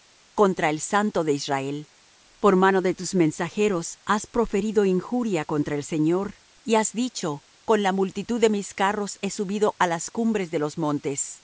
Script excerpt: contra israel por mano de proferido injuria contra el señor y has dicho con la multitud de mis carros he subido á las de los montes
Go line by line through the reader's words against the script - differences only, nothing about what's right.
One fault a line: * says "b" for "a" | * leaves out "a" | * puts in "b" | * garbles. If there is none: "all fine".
* puts in "el santo de"
* puts in "tus mensajeros has"
* puts in "cumbres"